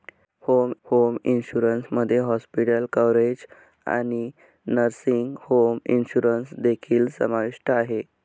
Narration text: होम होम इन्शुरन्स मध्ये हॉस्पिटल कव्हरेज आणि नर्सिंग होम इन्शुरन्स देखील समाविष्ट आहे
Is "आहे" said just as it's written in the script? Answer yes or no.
yes